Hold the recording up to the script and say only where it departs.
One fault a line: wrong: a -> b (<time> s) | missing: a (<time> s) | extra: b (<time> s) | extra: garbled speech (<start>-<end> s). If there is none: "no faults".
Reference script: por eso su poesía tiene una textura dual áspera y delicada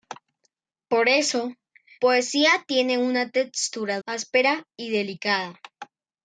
missing: su (1.5 s)
missing: dual (4.0 s)